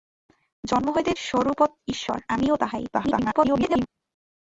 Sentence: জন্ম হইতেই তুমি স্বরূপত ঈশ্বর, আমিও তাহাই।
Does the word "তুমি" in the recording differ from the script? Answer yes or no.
yes